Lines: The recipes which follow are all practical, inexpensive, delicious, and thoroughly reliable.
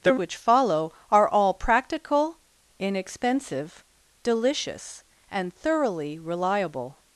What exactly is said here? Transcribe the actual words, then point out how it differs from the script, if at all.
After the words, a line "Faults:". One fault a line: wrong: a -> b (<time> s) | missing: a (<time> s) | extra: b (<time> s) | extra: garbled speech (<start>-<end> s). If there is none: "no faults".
The which follow are all practical, inexpensive, delicious, and thoroughly reliable.
Faults:
missing: recipes (0.1 s)